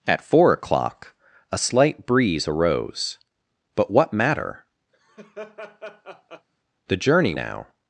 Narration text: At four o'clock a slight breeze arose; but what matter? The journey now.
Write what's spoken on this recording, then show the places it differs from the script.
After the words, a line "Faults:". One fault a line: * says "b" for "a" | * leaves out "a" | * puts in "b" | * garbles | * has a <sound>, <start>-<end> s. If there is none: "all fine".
At four o'clock a slight breeze arose; but what matter? The journey now.
Faults:
* has a laugh, 4.9-6.5 s